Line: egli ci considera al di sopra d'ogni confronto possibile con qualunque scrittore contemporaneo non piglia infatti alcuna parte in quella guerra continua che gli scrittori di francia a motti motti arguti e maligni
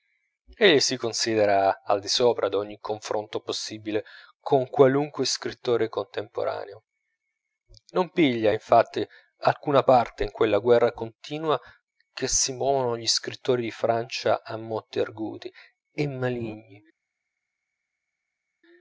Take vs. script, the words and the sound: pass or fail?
fail